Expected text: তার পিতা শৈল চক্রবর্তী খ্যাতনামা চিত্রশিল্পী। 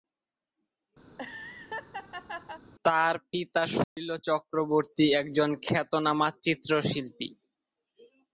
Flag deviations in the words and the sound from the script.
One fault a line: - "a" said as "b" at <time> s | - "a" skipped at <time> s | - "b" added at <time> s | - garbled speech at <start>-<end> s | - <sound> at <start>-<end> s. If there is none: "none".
- laugh at 1.1-2.6 s
- dropout at 3.8-4.0 s
- "একজন" added at 5.2 s